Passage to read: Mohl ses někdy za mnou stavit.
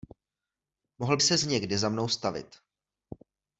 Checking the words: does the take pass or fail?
pass